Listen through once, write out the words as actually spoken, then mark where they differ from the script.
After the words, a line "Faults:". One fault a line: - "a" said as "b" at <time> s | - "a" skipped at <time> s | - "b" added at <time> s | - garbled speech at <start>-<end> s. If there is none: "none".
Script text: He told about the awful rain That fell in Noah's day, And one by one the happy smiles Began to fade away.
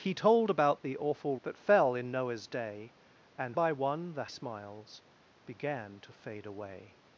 He told about the awful That fell in Noah's day, And by one the smiles Began to fade away.
Faults:
- "rain" skipped at 1.4 s
- "one" skipped at 3.6 s
- "happy" skipped at 4.3 s